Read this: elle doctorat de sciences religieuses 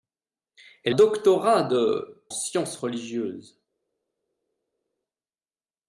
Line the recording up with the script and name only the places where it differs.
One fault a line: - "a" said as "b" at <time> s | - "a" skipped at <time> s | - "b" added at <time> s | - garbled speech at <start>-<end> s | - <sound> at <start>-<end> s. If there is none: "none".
none